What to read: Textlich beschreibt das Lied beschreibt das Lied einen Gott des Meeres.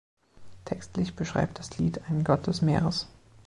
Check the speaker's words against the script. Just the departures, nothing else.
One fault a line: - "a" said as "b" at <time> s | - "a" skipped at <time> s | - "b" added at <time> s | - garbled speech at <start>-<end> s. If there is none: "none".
- "beschreibt das Lied" skipped at 2.0 s